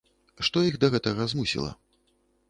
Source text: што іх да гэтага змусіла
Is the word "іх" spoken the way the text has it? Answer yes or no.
yes